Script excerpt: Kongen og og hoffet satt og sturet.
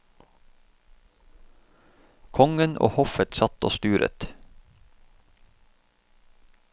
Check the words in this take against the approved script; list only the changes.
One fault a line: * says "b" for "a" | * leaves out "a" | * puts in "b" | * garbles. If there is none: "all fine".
* leaves out "og"